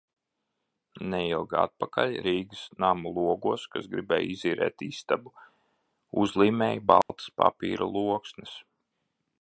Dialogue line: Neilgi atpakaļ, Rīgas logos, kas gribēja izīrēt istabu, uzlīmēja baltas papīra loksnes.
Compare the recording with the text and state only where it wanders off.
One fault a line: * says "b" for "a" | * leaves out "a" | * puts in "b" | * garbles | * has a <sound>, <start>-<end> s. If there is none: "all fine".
* puts in "namu"
* has a dropout, 7.0-7.1 s